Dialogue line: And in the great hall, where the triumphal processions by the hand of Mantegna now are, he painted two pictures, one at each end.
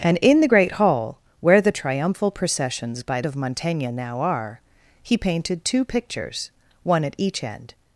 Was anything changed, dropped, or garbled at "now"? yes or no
no